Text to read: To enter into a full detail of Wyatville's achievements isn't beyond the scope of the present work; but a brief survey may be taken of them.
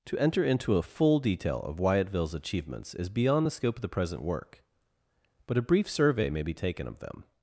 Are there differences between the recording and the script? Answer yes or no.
yes